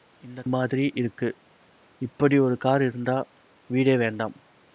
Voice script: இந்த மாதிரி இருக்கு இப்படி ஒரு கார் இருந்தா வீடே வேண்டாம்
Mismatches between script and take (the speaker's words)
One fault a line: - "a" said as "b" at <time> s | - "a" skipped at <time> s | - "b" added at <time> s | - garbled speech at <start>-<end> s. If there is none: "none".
none